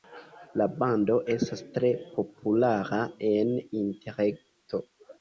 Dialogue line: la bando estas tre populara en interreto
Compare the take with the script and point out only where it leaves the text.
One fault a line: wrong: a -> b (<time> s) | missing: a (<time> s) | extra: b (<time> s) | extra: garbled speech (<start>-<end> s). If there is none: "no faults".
no faults